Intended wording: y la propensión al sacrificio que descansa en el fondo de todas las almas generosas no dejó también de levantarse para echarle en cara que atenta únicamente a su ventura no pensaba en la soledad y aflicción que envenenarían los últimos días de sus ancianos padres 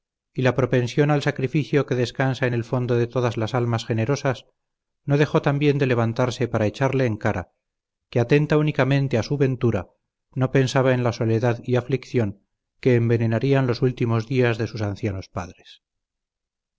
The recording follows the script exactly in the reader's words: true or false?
true